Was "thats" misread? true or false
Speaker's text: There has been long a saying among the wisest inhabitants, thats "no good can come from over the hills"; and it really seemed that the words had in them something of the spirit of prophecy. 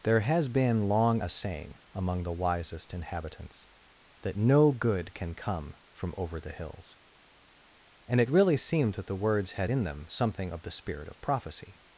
true